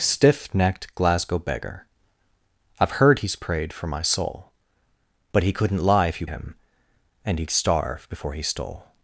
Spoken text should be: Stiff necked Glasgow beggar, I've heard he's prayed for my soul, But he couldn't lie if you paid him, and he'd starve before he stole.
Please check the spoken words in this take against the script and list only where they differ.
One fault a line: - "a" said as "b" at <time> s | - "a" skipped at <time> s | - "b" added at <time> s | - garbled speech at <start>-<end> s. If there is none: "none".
- "paid" skipped at 6.2 s